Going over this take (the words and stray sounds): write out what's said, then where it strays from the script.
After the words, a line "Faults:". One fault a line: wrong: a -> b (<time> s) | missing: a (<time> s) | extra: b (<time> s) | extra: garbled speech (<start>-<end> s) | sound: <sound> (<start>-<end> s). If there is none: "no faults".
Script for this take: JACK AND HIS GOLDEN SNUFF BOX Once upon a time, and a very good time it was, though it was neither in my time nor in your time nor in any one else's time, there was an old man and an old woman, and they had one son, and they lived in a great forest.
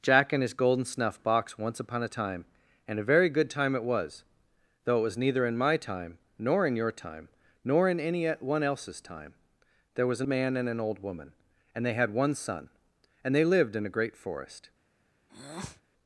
JACK AND HIS GOLDEN SNUFF BOX Once upon a time, and a very good time it was, though it was neither in my time nor in your time nor in any one else's time, there was an man and an old woman, and they had one son, and they lived in a great forest.
Faults:
missing: old (10.3 s)
sound: breath (15.3-15.8 s)